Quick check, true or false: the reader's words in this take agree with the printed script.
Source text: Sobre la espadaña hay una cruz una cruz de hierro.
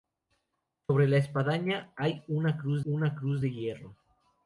true